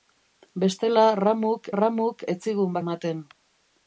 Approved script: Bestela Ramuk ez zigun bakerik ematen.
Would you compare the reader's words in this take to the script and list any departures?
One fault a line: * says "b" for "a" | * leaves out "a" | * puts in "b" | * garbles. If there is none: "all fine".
* puts in "Ramuk"
* leaves out "bakerik"